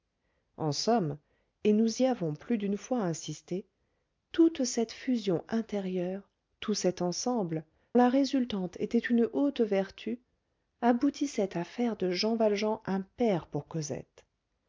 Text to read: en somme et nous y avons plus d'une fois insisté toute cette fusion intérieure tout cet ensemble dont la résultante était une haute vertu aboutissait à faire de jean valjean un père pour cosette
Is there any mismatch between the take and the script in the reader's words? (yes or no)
yes